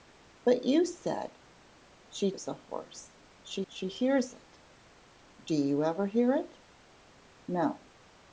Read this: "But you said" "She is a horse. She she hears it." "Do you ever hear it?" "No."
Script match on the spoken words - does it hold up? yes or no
yes